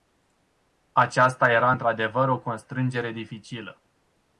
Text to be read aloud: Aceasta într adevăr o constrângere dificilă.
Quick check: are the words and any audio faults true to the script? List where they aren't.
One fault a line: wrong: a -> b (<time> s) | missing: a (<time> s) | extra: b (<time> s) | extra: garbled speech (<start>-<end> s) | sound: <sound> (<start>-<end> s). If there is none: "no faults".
extra: era (1.5 s)